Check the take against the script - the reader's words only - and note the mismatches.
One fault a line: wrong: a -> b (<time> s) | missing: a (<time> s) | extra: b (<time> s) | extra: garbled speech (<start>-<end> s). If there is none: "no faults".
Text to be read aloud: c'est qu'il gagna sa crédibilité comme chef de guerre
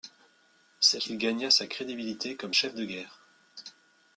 no faults